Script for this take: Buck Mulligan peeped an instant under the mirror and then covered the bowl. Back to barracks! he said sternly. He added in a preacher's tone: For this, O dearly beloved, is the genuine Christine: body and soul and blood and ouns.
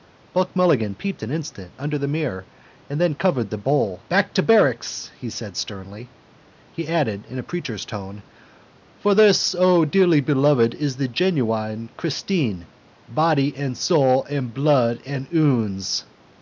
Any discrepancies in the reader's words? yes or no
no